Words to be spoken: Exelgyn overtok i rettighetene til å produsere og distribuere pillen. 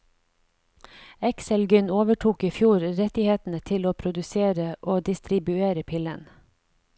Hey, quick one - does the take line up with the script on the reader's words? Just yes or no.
no